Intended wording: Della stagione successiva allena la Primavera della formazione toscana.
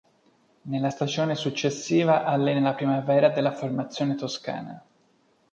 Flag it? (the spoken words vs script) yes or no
yes